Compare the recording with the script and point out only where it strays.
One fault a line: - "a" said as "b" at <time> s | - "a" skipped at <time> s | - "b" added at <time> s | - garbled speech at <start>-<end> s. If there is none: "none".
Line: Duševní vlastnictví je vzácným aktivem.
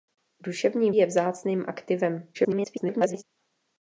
- "vlastnictví" skipped at 0.9 s
- garbled speech at 2.3-3.2 s